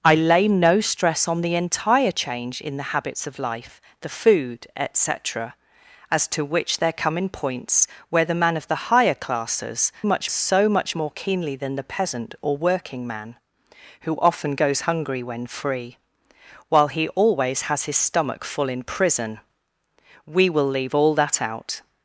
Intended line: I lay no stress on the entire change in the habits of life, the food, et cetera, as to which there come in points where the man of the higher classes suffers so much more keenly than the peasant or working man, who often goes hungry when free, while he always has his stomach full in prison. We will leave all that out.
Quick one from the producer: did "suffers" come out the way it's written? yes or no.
no